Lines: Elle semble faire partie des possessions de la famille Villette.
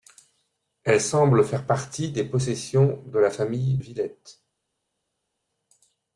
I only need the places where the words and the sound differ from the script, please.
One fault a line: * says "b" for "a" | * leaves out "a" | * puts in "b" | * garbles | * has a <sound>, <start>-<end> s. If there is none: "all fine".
all fine